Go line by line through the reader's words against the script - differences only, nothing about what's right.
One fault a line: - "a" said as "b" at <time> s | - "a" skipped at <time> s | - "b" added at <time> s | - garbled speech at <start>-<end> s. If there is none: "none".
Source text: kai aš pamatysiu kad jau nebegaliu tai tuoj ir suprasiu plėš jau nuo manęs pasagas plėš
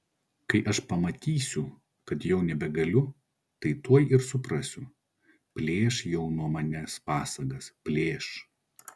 none